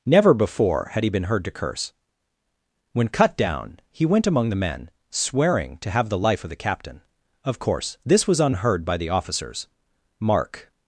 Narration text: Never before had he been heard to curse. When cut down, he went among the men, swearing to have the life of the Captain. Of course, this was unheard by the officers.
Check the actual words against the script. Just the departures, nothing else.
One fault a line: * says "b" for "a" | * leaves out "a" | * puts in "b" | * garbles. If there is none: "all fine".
* puts in "Mark"